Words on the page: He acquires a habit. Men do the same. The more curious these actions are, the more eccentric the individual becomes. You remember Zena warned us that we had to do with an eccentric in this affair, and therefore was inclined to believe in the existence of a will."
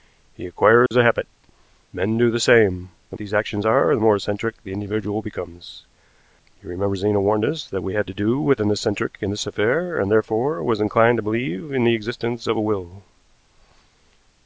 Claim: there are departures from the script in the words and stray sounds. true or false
true